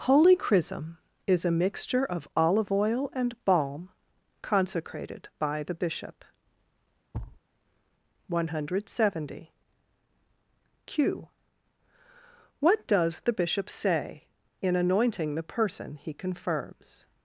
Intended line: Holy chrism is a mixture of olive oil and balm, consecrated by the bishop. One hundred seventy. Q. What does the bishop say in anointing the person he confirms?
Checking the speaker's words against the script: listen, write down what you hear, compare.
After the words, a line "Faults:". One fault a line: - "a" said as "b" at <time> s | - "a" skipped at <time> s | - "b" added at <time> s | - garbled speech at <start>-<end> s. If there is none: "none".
Holy chrism is a mixture of olive oil and balm, consecrated by the bishop. One hundred seventy. Q. What does the bishop say in anointing the person he confirms?
Faults:
none